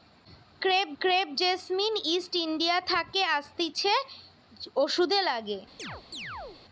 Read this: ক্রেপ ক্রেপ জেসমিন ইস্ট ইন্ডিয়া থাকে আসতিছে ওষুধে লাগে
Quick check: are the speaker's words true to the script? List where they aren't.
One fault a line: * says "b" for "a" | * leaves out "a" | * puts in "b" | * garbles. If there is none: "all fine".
all fine